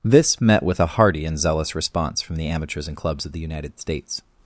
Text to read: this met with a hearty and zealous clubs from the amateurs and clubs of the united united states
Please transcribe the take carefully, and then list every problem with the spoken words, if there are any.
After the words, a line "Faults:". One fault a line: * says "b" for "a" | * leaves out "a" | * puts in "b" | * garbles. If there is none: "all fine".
this met with a hearty and zealous response from the amateurs and clubs of the united states
Faults:
* says "response" for "clubs"
* leaves out "united"